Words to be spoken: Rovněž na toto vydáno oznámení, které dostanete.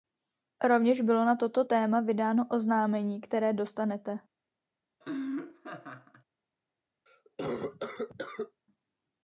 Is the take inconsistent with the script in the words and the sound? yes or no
yes